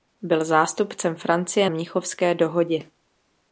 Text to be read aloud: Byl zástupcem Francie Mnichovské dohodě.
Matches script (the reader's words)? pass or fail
pass